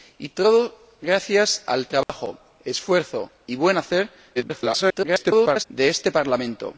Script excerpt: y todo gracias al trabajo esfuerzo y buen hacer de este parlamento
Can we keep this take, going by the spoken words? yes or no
no